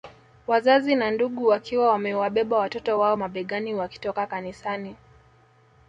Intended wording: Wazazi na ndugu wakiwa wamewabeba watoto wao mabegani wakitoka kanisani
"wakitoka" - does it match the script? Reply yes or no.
yes